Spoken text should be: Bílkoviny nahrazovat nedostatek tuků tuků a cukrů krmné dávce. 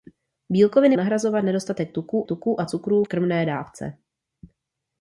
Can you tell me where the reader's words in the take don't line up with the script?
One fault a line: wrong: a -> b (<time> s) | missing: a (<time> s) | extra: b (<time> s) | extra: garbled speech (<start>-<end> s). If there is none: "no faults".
no faults